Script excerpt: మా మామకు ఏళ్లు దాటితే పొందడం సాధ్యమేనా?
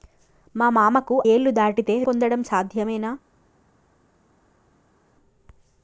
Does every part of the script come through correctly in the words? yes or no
yes